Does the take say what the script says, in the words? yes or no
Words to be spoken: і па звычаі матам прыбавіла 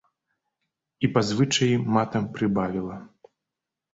yes